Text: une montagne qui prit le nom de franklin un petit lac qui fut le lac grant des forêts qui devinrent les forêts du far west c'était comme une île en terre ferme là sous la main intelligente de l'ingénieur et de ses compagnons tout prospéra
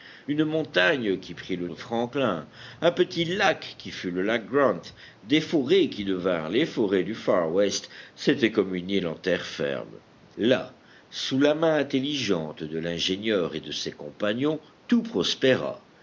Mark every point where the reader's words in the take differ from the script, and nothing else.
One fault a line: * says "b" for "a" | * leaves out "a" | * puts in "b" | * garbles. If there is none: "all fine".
* leaves out "nom"